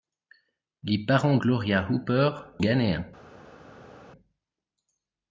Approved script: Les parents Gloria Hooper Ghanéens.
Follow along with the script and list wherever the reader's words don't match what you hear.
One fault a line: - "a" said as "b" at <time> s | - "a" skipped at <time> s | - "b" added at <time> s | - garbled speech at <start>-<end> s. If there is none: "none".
none